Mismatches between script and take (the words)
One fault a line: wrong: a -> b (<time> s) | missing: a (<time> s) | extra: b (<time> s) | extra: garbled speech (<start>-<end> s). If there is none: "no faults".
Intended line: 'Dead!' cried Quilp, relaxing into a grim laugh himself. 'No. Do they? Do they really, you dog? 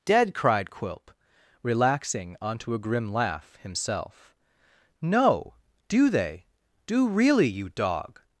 wrong: into -> onto (2.4 s)
missing: they (7.1 s)